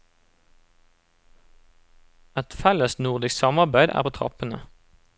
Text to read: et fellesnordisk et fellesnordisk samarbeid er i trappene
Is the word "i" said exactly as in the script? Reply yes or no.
no